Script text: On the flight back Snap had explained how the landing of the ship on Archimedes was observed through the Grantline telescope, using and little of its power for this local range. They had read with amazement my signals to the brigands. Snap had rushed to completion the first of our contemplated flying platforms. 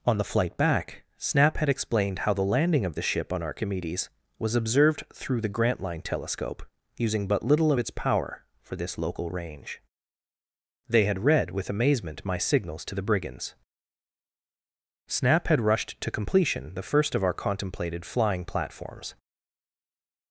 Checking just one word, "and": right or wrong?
wrong